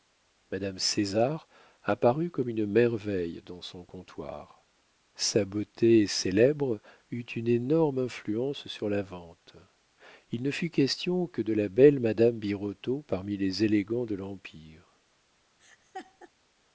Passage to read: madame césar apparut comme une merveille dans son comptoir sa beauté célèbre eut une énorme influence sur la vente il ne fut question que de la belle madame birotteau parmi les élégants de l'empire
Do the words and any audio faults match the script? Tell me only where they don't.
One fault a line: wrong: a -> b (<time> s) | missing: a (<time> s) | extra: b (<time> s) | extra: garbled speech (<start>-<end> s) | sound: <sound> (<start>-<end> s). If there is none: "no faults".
sound: laugh (15.6-16.3 s)